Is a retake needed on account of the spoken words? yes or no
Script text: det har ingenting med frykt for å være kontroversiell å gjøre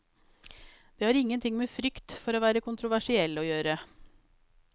no